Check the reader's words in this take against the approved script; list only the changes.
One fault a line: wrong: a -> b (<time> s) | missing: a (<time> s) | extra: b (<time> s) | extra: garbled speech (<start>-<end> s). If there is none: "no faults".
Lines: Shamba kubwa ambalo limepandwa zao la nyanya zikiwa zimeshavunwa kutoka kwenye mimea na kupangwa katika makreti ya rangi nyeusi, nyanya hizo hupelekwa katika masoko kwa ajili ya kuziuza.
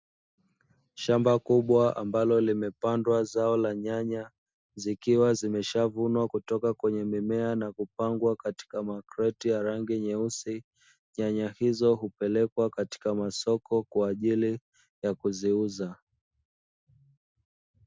no faults